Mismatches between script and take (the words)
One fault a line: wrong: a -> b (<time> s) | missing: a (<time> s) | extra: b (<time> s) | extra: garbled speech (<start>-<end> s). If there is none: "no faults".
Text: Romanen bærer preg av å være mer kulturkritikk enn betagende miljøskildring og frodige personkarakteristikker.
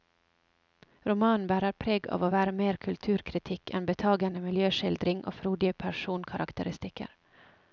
no faults